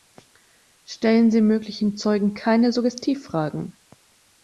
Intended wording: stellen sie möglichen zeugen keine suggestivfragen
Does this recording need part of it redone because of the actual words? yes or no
no